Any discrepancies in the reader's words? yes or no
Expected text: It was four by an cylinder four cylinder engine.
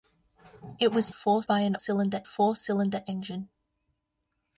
no